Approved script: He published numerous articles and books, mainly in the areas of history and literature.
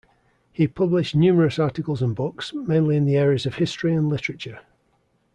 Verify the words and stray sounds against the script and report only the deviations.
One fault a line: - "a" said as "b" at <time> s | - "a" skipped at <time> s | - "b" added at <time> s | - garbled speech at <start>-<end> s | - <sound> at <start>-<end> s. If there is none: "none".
none